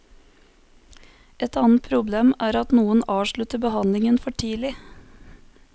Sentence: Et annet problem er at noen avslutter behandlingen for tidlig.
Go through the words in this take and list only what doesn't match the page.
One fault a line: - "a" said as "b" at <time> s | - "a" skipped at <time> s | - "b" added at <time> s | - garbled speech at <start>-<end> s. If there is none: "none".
none